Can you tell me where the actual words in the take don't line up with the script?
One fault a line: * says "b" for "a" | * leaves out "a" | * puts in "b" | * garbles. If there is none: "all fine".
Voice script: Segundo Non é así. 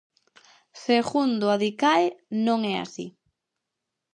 * puts in "Adicae"